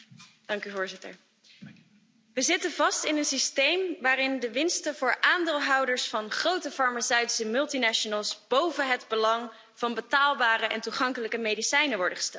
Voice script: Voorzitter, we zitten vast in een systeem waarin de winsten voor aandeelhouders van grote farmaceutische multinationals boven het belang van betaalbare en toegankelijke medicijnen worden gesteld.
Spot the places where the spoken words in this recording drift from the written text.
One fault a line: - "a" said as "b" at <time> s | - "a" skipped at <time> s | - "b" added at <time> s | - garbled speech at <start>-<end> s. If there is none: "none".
none